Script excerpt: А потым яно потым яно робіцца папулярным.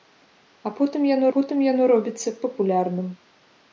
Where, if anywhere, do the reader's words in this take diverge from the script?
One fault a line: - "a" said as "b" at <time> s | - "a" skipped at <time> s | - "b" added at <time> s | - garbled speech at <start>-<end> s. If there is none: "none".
none